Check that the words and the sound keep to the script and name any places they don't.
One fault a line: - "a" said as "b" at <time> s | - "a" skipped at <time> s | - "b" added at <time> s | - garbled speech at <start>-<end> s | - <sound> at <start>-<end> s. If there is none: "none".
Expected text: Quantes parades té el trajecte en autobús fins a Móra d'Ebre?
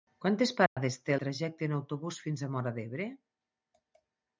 - dropout at 0.7-0.8 s
- "el" skipped at 1.2 s